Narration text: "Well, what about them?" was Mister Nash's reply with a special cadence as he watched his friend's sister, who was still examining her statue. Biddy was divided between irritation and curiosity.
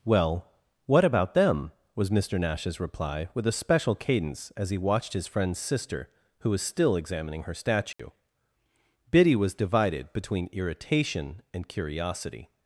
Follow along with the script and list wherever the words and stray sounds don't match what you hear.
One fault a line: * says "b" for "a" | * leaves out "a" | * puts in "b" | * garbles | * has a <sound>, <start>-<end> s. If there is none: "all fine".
* has a dropout, 7.9-8.0 s